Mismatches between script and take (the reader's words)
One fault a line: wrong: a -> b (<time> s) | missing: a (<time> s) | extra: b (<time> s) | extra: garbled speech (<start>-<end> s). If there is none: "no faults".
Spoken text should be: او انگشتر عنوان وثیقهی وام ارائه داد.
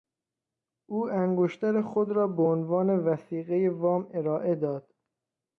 extra: خود را به (1.8 s)